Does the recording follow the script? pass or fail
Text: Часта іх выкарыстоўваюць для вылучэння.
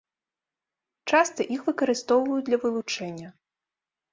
pass